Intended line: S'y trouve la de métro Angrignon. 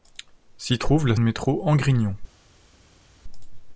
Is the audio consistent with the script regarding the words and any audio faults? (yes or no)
yes